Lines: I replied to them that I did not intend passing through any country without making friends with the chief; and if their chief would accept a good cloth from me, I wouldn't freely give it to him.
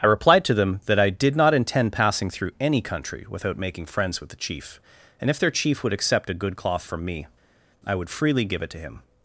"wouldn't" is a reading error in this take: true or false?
true